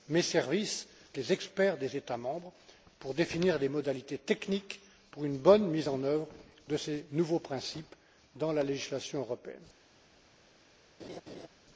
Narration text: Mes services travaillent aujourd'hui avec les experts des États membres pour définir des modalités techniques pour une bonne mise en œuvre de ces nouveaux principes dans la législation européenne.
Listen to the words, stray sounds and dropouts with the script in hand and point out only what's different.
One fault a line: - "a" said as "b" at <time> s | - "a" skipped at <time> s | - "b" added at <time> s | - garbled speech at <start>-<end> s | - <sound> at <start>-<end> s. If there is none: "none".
- "travaillent aujourd'hui avec" skipped at 0.9 s
- laugh at 11.0-11.5 s